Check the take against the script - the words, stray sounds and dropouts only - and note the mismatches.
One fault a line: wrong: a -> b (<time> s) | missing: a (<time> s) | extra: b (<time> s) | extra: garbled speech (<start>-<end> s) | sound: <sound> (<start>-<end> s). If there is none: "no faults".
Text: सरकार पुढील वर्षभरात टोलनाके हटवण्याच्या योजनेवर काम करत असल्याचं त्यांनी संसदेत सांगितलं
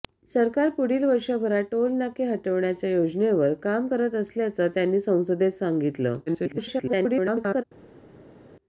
extra: garbled speech (6.3-7.6 s)